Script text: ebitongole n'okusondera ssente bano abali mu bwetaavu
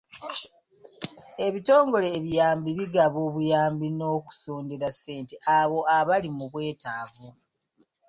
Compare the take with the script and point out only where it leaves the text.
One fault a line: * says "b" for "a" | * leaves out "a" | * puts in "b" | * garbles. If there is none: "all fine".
* puts in "ebiyambi bigaba obuyambi"
* says "abo" for "bano"